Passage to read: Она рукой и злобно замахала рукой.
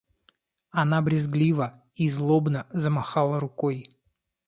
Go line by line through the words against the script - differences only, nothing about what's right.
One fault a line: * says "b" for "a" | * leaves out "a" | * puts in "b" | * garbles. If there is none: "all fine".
* says "брезгливо" for "рукой"